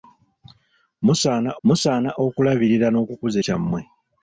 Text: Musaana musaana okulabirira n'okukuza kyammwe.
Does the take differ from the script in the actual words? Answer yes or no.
no